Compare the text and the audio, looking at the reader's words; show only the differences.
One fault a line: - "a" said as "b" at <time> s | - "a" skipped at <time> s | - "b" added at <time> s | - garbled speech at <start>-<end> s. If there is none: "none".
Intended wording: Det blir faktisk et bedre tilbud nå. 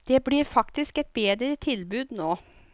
none